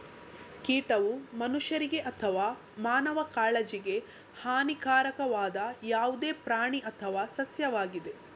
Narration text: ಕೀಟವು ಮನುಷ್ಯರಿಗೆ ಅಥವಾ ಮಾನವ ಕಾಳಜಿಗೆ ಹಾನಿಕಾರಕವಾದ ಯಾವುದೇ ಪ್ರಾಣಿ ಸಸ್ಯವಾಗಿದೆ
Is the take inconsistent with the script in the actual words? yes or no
yes